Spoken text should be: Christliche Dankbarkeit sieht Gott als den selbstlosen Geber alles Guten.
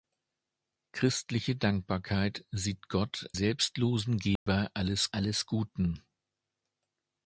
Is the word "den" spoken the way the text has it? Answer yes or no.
no